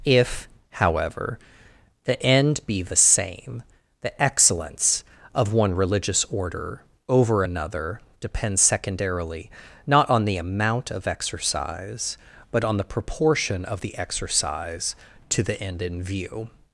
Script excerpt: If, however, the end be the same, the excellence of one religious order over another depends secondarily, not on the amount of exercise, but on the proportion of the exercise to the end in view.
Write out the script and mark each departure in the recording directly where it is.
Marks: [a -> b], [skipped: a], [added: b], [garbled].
If, however, the end be the same, the excellence of one religious order over another depends secondarily, not on the amount of exercise, but on the proportion of the exercise to the end in view.